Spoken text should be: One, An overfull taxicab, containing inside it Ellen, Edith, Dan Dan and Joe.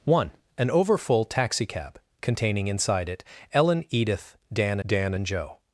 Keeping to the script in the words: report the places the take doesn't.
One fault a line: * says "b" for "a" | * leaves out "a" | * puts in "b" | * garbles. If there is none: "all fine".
all fine